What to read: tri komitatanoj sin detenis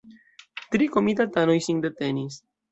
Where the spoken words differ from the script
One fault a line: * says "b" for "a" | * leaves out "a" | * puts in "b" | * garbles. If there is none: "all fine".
all fine